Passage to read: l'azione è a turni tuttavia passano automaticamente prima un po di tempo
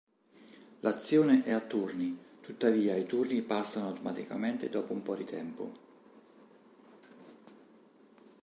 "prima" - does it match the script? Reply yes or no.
no